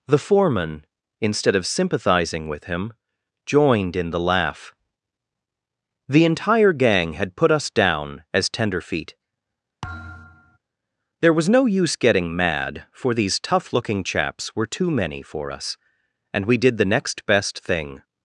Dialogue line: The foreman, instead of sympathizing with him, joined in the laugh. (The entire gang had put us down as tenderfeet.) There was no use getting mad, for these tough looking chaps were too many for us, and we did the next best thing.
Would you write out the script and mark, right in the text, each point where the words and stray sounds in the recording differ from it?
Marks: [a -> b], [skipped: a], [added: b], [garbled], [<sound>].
The foreman, instead of sympathizing with him, joined in the laugh. (The entire gang had put us down as tenderfeet.) [thud] There was no use getting mad, for these tough looking chaps were too many for us, and we did the next best thing.